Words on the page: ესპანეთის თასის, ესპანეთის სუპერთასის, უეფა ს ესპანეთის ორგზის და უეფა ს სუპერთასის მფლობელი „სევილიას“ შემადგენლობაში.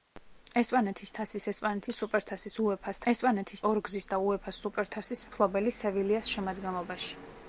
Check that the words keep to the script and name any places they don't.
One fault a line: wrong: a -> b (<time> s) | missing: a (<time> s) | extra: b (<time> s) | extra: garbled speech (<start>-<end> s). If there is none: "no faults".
no faults